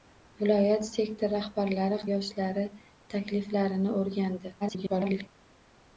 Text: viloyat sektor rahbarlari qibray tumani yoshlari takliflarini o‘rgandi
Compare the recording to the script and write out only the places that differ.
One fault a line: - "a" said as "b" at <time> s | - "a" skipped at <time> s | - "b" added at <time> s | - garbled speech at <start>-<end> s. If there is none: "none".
- "qibray tumani" skipped at 2.0 s
- garbled speech at 4.6-5.3 s